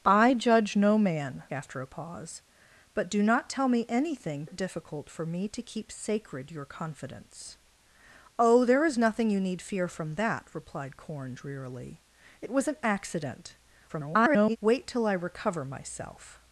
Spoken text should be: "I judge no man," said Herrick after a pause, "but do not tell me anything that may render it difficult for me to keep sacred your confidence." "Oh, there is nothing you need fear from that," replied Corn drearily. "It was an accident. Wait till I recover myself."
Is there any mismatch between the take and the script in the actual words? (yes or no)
yes